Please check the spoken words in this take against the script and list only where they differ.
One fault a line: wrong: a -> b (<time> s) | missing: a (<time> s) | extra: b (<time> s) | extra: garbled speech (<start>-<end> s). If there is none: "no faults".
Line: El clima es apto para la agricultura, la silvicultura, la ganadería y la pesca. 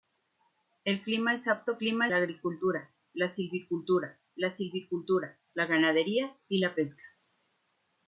wrong: para -> clima (1.8 s)
extra: silvicultura la (4.5 s)